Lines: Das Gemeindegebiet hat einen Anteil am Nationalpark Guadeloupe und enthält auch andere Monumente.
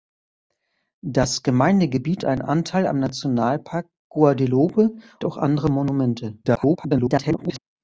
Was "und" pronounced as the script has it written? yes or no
no